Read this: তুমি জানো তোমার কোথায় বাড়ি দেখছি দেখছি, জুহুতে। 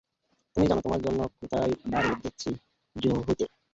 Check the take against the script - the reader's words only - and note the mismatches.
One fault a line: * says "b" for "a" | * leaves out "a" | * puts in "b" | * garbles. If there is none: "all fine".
* puts in "জন্য"
* leaves out "দেখছি"